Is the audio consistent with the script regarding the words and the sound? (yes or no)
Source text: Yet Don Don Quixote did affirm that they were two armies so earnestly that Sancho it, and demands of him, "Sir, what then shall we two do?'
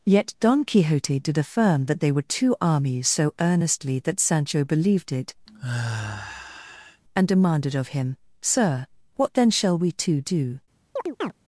no